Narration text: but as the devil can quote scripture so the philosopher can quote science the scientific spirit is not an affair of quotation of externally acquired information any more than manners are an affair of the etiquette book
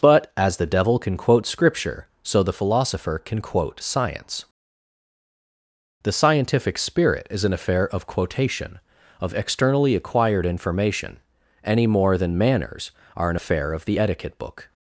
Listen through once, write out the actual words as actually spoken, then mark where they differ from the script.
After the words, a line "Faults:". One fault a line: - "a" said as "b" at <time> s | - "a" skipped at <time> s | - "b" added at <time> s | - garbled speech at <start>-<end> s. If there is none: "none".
but as the devil can quote scripture so the philosopher can quote science the scientific spirit is an affair of quotation of externally acquired information any more than manners are an affair of the etiquette book
Faults:
- "not" skipped at 7.4 s